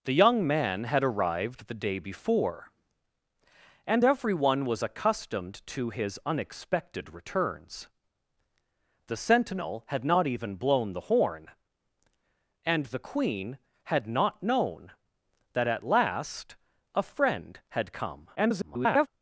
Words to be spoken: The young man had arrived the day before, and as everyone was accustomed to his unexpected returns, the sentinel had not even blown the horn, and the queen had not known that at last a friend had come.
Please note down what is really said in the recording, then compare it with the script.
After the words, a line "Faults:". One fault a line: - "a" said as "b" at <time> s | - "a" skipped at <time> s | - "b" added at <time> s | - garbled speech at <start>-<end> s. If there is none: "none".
The young man had arrived the day before, and everyone was accustomed to his unexpected returns, the sentinel had not even blown the horn, and the queen had not known that at last a friend had come. [garbled]
Faults:
- "as" skipped at 4.0 s
- garbled speech at 18.3-19.1 s